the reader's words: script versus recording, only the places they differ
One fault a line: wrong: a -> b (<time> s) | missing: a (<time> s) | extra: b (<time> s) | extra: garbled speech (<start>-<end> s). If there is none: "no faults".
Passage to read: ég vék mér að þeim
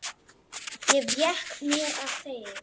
no faults